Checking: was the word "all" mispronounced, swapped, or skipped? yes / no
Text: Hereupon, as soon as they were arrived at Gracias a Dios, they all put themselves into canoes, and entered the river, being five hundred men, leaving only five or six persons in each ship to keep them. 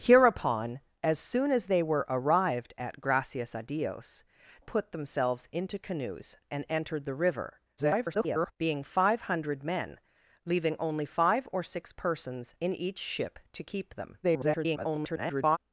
yes